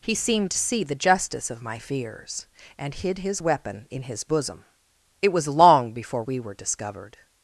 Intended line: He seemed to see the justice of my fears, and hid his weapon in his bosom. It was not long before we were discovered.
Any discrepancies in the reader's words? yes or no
yes